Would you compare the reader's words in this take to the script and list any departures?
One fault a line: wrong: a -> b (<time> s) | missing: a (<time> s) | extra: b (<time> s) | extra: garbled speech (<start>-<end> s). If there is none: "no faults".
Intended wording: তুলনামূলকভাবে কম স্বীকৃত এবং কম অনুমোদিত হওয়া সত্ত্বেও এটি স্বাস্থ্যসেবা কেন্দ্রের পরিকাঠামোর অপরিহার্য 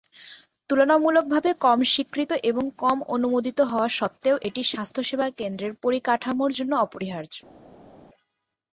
extra: জন্য (6.5 s)